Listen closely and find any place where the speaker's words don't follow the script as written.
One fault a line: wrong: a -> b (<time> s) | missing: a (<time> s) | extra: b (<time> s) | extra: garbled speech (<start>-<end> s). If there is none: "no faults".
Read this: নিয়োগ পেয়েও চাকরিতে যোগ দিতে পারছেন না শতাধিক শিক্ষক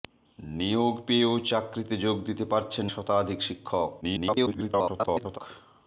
missing: না (2.9 s)
extra: garbled speech (4.0-5.4 s)